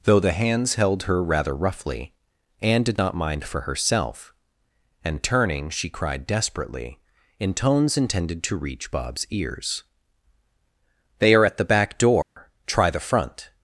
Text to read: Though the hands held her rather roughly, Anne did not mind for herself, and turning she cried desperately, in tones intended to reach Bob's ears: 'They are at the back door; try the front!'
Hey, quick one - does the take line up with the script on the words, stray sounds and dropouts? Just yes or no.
no